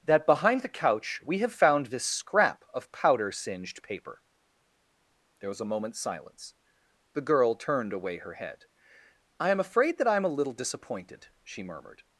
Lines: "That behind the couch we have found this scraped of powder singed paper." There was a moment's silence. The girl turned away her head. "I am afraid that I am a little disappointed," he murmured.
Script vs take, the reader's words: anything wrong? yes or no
yes